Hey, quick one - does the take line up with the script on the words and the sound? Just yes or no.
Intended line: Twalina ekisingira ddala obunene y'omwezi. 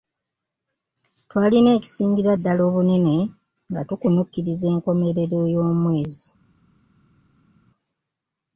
no